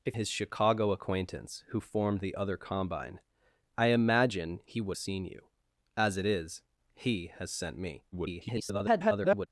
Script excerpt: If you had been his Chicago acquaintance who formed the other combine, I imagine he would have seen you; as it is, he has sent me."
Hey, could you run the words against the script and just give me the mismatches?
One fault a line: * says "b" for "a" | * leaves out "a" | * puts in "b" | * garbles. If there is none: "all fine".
* leaves out "you had been"
* leaves out "have"
* garbles